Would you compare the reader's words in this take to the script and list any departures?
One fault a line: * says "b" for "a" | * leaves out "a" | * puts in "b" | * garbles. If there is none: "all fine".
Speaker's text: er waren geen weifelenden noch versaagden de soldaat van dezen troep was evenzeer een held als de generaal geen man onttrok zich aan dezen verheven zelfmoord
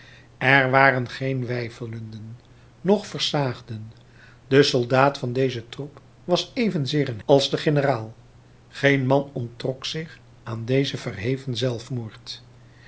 * leaves out "held"